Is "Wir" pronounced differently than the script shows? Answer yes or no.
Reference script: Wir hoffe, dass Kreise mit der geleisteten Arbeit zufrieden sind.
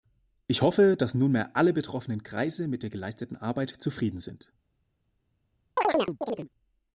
yes